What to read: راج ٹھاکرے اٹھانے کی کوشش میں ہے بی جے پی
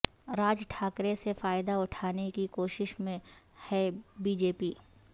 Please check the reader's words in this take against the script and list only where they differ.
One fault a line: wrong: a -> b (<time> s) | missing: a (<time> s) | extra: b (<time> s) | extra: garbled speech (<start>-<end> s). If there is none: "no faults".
extra: سے فائدہ (1.1 s)